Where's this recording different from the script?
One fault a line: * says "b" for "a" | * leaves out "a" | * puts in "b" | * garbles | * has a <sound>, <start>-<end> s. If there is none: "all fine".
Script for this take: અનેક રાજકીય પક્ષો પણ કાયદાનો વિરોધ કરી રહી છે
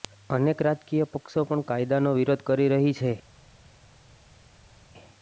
all fine